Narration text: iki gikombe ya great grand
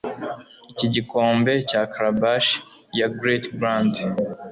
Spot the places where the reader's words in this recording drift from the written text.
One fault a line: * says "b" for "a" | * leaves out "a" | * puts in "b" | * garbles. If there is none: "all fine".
* puts in "cya calabash"